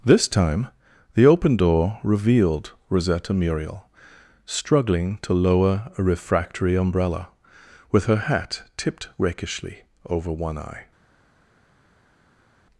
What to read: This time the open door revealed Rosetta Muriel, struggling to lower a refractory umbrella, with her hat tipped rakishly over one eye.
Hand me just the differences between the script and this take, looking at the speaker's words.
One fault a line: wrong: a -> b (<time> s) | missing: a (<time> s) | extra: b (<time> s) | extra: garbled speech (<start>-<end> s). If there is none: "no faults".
no faults